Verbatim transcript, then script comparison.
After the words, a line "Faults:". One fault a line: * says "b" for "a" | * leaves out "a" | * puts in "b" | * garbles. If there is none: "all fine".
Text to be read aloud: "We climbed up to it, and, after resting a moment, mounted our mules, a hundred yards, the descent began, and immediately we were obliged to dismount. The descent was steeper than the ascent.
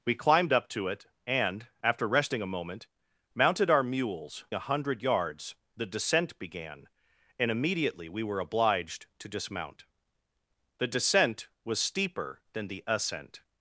"We climbed up to it, and, after resting a moment, mounted our mules, a hundred yards, the descent began, and immediately we were obliged to dismount. The descent was steeper than the ascent.
Faults:
all fine